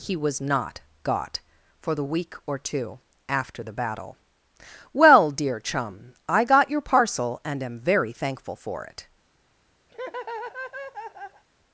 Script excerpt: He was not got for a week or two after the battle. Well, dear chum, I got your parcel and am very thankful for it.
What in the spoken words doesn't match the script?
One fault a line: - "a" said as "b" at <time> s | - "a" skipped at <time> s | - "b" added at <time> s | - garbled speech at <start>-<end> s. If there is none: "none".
- "a" said as "the" at 1.9 s